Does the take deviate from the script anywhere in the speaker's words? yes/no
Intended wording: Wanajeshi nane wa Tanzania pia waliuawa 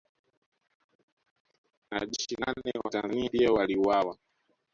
no